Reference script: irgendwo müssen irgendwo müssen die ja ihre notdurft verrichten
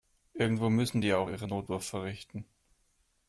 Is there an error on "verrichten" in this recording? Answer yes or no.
no